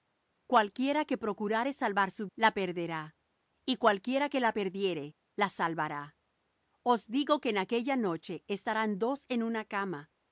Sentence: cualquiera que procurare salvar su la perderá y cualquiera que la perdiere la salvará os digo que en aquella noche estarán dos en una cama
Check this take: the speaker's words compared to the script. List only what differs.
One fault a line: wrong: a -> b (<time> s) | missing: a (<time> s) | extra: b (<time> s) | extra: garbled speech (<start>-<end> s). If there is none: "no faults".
no faults